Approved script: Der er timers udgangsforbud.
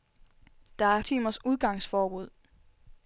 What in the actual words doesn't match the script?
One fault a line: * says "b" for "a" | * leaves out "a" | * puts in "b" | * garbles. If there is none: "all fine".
all fine